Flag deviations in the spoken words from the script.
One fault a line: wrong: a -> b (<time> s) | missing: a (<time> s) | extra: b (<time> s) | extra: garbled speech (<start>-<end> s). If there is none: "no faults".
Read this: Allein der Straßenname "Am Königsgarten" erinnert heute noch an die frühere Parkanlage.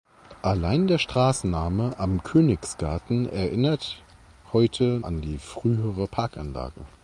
missing: noch (5.0 s)